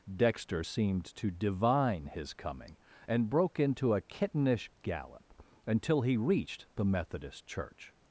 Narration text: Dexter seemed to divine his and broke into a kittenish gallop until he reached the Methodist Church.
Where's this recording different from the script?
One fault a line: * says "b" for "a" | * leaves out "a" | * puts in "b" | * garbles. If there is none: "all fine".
* puts in "coming"